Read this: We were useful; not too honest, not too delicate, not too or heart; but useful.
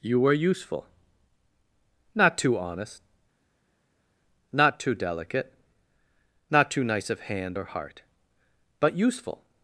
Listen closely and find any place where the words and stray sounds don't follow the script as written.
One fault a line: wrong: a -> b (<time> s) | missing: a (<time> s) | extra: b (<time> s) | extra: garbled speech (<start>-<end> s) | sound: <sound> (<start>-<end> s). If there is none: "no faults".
wrong: We -> You (0.0 s)
extra: nice of hand (6.8 s)